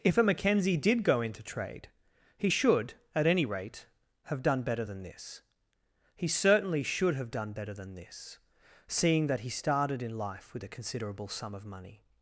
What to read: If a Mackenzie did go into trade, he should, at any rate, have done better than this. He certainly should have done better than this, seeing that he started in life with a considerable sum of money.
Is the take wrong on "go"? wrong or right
right